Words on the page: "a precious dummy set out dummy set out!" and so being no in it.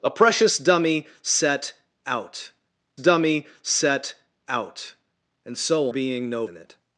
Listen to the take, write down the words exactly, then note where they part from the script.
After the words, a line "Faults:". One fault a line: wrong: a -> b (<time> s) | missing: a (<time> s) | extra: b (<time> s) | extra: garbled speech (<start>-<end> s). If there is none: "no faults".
"a precious dummy set out dummy set out!" and so being no in it.
Faults:
no faults